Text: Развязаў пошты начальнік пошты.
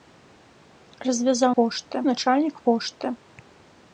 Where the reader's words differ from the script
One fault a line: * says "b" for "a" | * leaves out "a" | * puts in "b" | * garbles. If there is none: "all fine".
all fine